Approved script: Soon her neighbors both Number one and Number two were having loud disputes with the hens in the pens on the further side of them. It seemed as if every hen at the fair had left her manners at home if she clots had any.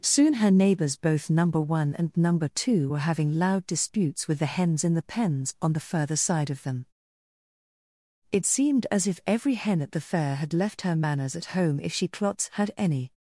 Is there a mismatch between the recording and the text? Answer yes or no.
no